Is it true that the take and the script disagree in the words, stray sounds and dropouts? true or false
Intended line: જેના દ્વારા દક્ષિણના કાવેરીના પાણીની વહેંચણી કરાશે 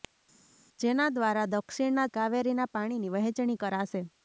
false